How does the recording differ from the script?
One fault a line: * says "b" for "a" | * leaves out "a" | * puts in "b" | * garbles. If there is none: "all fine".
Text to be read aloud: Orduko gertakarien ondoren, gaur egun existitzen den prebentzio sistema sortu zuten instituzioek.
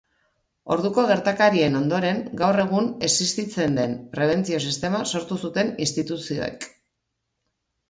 all fine